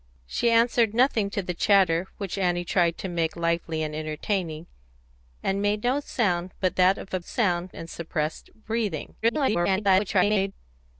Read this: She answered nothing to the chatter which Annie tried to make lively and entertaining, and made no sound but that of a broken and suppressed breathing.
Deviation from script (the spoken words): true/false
true